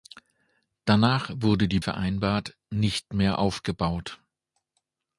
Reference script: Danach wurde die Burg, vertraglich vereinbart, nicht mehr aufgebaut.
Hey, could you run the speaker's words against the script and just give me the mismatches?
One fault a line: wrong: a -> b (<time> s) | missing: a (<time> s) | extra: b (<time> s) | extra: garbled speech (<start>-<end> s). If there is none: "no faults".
missing: Burg vertraglich (1.8 s)